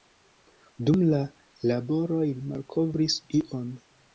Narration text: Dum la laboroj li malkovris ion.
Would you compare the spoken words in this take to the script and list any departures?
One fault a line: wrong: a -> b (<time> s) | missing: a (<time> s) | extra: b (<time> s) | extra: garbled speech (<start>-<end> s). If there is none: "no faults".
no faults